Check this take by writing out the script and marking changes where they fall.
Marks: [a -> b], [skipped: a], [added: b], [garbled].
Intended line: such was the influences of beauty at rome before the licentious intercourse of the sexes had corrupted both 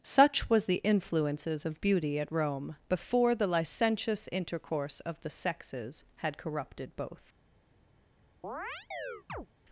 such was the influences of beauty at rome before the licentious intercourse of the sexes had corrupted both